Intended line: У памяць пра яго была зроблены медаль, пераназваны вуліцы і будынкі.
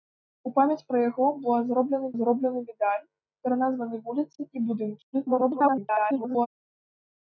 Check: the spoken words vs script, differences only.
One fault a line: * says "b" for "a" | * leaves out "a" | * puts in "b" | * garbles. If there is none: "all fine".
* puts in "зроблены"
* garbles